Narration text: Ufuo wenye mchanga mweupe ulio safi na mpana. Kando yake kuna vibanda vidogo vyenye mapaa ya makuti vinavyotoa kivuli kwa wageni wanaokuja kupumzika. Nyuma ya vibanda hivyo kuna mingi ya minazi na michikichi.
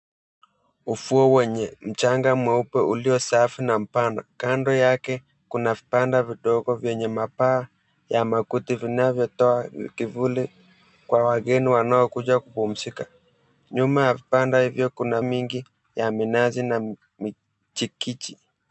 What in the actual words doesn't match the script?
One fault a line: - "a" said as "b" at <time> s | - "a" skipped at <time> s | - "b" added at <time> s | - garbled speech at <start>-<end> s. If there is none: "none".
none